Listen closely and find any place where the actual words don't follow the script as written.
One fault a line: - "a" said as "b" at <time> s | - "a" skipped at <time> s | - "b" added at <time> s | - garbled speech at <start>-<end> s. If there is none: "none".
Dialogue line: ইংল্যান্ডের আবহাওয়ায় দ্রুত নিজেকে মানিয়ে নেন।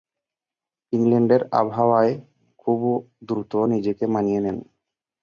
- "খুব" added at 2.6 s